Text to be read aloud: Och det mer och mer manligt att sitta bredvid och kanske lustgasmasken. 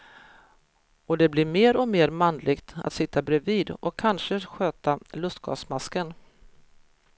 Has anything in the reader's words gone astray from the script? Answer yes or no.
yes